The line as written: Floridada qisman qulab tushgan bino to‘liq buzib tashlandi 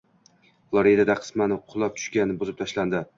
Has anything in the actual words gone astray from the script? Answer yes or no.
yes